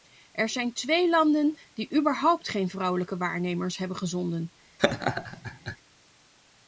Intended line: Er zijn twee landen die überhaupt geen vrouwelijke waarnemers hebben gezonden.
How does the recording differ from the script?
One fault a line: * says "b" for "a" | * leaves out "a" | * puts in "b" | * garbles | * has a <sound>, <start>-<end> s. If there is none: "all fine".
* has a laugh, 4.8-5.8 s